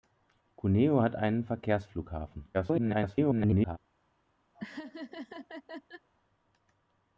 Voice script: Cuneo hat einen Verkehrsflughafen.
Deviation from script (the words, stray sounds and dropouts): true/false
true